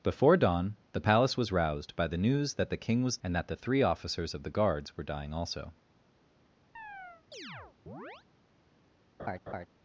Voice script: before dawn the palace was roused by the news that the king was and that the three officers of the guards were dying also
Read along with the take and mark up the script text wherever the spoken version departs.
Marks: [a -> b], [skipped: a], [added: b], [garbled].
before dawn the palace was roused by the news that the king was and that the three officers of the guards were dying also